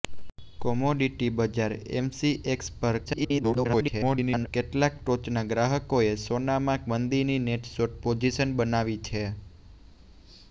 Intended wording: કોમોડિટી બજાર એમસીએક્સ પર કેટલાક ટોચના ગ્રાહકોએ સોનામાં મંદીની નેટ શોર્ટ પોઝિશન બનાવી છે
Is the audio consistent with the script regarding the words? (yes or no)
no